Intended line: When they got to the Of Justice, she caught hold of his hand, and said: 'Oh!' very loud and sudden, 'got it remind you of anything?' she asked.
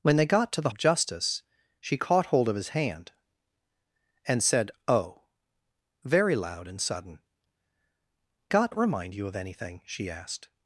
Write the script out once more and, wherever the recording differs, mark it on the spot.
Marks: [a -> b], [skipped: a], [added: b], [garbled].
When they got to the Of Justice, she caught hold of his hand, and said: 'Oh!' very loud and sudden, 'got it remind you of anything?' she asked.